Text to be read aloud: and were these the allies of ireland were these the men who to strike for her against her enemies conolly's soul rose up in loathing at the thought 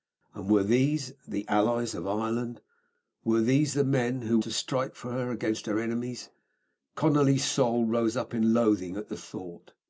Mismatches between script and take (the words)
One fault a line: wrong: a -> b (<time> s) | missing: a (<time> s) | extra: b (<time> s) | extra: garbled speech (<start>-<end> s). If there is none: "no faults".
no faults